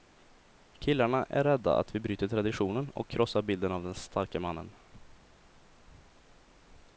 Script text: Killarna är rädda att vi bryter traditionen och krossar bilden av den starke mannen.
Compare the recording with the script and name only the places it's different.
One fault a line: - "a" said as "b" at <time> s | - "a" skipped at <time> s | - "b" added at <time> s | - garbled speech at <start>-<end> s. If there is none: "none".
none